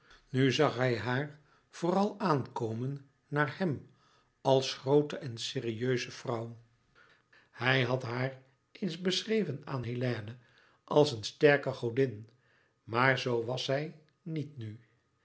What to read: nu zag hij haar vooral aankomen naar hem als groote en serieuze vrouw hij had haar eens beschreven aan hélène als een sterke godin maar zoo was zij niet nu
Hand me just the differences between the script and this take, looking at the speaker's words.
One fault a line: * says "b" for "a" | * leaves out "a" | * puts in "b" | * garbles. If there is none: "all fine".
all fine